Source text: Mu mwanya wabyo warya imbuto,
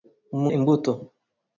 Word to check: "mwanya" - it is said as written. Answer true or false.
false